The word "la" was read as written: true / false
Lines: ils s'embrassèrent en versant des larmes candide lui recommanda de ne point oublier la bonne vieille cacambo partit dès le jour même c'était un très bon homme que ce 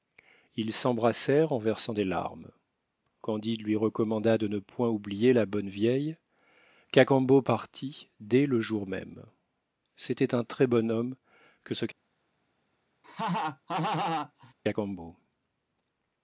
true